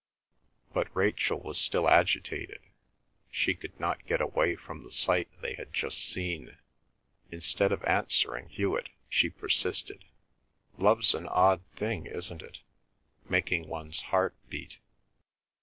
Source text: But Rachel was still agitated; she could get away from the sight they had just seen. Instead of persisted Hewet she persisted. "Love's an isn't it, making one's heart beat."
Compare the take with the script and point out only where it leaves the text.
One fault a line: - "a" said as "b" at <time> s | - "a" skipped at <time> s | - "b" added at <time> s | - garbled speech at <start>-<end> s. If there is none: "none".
- "not" added at 3.8 s
- "persisted" said as "answering" at 7.8 s
- "odd thing" added at 11.3 s